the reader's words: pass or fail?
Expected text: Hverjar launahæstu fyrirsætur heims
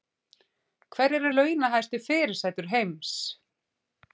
pass